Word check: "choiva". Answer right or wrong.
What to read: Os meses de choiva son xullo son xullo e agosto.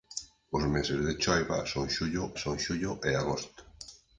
right